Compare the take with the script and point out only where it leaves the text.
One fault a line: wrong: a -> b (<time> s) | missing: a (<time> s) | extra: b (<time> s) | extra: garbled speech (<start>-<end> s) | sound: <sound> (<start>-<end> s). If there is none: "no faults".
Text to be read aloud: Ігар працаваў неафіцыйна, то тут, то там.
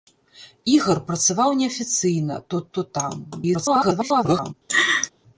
missing: тут (2.6 s)
extra: garbled speech (3.3-4.5 s)
sound: laugh (4.7-5.1 s)